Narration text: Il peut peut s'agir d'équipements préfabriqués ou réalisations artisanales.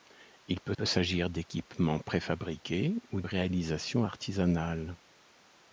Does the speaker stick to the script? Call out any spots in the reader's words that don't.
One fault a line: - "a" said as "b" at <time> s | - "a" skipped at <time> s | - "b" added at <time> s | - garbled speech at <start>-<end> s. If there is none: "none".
none